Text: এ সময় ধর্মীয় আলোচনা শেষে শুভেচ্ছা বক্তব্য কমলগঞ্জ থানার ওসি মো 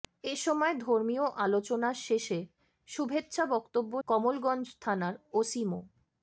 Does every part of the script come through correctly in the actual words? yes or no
yes